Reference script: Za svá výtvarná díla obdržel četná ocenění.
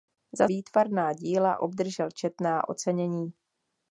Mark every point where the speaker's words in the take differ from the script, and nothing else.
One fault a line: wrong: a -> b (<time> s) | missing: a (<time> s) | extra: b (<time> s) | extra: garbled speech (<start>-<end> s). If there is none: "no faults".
missing: svá (0.5 s)